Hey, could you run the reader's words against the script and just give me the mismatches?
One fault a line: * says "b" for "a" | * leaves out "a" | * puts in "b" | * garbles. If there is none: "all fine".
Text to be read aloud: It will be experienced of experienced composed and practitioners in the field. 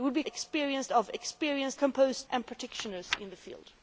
all fine